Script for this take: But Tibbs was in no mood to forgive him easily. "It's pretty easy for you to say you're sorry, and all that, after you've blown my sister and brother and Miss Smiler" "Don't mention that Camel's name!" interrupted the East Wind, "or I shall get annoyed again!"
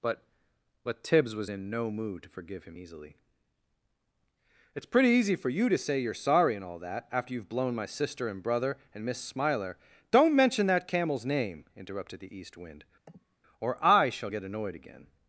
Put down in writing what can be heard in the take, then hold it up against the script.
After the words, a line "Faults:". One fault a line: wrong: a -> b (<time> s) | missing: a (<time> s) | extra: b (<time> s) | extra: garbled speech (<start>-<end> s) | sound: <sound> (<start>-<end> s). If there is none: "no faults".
But but Tibbs was in no mood to forgive him easily. "It's pretty easy for you to say you're sorry, and all that, after you've blown my sister and brother and Miss Smiler" "Don't mention that Camel's name!" interrupted the East Wind, "or I shall get annoyed again!"
Faults:
extra: but (0.8 s)
sound: sniff (13.1-13.4 s)